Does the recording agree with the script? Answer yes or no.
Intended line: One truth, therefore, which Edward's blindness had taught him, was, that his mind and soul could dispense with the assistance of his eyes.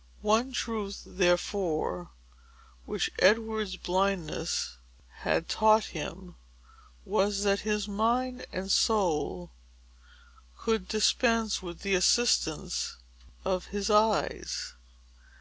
yes